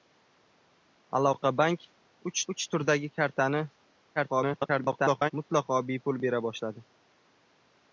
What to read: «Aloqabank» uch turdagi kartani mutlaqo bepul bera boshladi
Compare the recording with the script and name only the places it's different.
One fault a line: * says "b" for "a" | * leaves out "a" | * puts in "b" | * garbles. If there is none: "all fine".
* puts in "uch"
* garbles